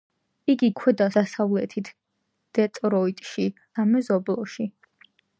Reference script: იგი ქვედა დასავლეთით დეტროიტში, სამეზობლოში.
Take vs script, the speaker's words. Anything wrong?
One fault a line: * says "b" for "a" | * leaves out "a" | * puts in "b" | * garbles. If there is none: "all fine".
all fine